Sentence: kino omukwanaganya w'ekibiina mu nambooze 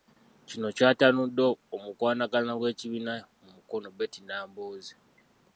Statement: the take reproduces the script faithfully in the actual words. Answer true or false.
false